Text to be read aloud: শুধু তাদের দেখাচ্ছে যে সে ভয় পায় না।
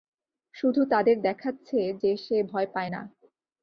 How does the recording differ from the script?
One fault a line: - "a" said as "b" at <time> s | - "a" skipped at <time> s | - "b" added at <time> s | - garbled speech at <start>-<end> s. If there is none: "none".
none